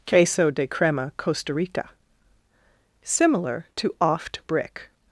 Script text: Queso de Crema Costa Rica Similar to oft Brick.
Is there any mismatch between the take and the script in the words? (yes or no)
no